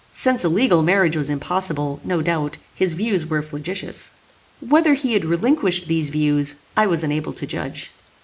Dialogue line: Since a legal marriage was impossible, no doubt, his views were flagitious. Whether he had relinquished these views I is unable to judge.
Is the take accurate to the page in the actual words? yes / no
no